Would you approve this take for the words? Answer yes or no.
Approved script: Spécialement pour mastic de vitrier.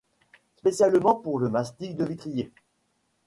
no